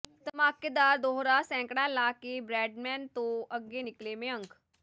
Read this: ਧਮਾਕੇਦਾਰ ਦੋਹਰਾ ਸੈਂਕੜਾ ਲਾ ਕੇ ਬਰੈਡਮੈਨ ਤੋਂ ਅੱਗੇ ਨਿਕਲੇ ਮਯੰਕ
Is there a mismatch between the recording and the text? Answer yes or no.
no